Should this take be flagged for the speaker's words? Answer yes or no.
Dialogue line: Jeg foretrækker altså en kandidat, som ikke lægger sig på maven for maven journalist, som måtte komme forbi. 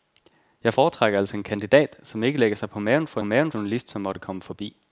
no